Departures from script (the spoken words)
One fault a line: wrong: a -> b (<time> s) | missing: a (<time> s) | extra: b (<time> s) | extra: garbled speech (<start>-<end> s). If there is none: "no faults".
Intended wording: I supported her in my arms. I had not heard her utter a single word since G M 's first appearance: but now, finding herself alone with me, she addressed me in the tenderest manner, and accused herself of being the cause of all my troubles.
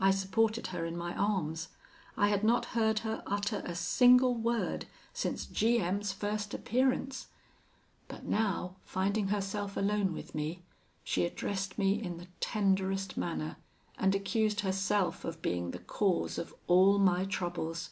no faults